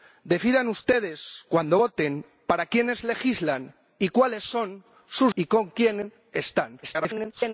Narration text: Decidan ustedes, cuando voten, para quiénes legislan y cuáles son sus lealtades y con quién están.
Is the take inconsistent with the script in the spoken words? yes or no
yes